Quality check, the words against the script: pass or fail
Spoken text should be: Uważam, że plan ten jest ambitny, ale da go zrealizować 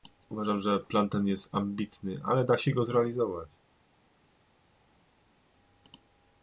fail